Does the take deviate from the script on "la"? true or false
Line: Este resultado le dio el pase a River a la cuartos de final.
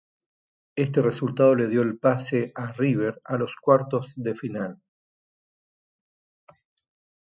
true